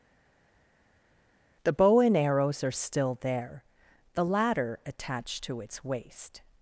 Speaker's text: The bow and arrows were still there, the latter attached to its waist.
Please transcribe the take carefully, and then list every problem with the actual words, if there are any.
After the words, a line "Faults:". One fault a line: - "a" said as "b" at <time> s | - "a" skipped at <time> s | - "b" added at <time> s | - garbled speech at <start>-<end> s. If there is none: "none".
The bow and arrows are still there, the latter attached to its waist.
Faults:
- "were" said as "are" at 2.6 s